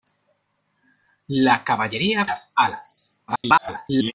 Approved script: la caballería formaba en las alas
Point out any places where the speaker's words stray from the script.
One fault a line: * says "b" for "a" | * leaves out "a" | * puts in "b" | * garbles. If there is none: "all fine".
* leaves out "formaba en"
* garbles